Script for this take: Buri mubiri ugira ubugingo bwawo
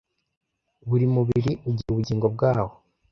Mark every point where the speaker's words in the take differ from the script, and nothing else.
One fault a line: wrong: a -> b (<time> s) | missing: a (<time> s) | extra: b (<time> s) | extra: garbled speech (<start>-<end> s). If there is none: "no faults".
no faults